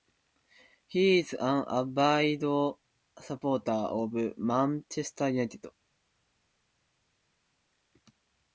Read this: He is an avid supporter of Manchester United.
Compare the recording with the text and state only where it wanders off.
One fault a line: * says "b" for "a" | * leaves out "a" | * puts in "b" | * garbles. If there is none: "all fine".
all fine